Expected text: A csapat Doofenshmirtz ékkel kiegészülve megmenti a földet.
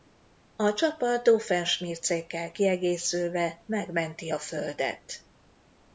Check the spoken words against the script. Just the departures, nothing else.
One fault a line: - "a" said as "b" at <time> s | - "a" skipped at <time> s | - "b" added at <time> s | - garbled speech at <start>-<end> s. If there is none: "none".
none